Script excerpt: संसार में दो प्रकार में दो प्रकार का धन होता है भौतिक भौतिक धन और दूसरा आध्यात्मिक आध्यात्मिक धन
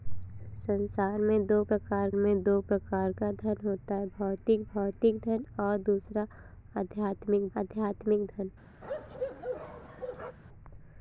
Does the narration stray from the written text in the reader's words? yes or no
no